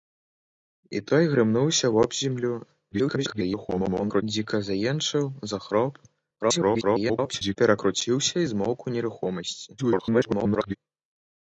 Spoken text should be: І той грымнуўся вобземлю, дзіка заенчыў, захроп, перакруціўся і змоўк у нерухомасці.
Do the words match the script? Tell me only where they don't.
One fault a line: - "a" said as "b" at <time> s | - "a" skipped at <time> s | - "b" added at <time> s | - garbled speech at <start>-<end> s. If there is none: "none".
- garbled speech at 2.9-4.2 s
- garbled speech at 6.4-7.6 s
- garbled speech at 9.8-10.8 s